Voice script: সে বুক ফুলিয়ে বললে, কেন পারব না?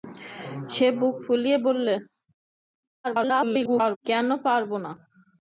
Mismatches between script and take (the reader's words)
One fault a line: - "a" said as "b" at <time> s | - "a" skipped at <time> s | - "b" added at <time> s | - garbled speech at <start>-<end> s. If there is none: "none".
- garbled speech at 3.0-4.0 s